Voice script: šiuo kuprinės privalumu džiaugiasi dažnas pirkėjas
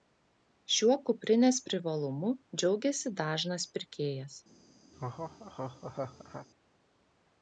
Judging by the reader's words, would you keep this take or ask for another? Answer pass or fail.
pass